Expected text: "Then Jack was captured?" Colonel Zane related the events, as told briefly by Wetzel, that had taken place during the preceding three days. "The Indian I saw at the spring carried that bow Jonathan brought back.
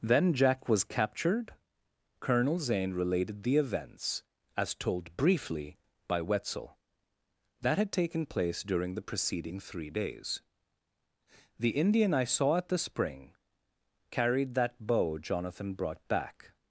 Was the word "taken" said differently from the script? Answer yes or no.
no